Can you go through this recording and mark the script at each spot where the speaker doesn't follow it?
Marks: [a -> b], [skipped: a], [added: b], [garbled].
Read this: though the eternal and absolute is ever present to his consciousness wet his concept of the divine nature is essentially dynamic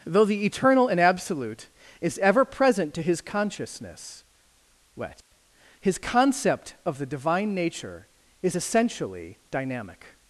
though the eternal and absolute is ever present to his consciousness wet his concept of the divine nature is essentially dynamic